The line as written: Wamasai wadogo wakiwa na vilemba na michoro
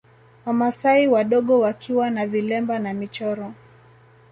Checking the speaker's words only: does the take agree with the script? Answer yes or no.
yes